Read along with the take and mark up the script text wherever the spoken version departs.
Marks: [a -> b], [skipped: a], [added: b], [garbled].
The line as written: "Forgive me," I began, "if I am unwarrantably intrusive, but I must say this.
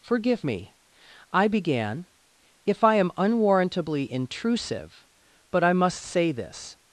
"Forgive me," I began, "if I am unwarrantably intrusive, but I must say this.